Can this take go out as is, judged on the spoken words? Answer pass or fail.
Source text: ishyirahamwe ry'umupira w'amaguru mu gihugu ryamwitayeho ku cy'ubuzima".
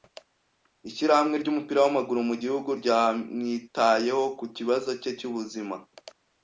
fail